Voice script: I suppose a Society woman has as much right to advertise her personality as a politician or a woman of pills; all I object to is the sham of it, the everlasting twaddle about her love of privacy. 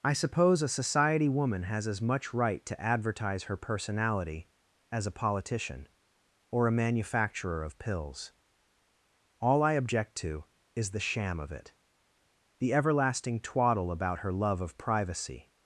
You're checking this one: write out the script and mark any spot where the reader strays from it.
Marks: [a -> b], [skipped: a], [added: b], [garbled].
I suppose a Society woman has as much right to advertise her personality as a politician or a [woman -> manufacturer] of pills; all I object to is the sham of it, the everlasting twaddle about her love of privacy.